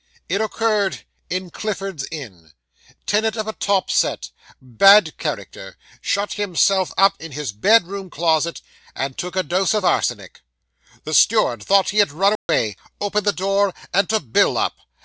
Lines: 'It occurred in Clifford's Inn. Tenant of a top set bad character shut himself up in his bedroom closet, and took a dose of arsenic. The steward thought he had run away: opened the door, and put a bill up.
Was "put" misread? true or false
true